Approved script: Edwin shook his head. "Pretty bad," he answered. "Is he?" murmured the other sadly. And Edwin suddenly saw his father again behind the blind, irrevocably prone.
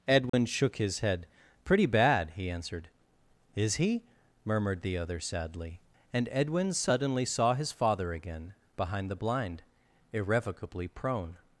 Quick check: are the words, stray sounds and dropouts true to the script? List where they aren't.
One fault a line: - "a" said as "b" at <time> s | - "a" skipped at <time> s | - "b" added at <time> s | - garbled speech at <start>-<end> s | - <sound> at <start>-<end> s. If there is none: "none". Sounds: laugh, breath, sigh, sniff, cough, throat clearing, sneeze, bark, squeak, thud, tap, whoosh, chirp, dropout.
- dropout at 0.3-0.3 s